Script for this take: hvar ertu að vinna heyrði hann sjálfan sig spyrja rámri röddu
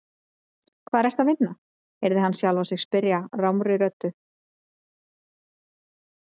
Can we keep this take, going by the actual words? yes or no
yes